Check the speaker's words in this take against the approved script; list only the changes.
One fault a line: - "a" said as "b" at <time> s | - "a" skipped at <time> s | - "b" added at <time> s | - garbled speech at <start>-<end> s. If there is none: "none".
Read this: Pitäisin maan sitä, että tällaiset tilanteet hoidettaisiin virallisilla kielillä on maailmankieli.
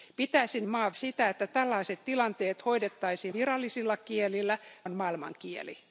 none